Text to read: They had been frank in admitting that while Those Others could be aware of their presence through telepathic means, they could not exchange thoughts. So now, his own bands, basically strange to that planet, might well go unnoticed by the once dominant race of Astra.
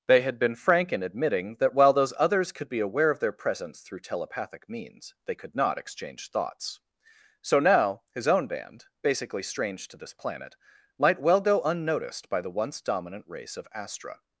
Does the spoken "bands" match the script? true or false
false